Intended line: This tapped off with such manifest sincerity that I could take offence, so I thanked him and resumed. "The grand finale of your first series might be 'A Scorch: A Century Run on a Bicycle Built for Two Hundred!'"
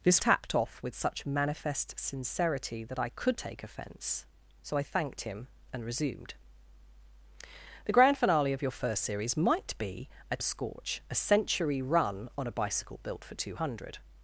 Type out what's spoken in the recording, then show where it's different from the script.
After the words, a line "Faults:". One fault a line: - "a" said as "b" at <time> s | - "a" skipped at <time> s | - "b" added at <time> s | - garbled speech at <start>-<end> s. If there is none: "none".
This tapped off with such manifest sincerity that I could take offence, so I thanked him and resumed. "The grand finale of your first series might be 'A Scorch: A Century Run on a Bicycle Built for Two Hundred!'"
Faults:
none